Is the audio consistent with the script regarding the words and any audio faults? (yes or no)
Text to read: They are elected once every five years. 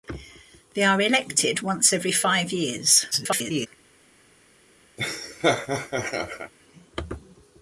no